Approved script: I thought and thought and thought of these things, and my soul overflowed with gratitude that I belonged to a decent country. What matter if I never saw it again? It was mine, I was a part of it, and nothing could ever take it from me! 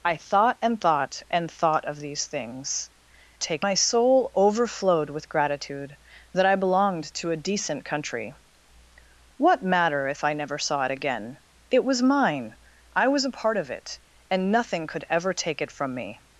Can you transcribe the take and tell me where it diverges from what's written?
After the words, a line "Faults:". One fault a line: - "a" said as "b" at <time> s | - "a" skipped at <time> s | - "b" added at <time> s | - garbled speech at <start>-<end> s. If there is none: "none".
I thought and thought and thought of these things, take my soul overflowed with gratitude that I belonged to a decent country. What matter if I never saw it again? It was mine, I was a part of it, and nothing could ever take it from me!
Faults:
- "and" said as "take" at 3.4 s